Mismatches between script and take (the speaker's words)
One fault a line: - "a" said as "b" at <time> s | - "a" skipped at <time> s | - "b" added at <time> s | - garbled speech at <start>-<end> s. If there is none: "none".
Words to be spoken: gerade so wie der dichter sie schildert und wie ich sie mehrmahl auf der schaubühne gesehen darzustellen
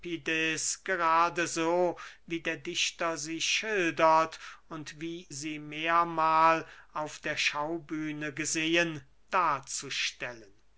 - "ich" skipped at 5.3 s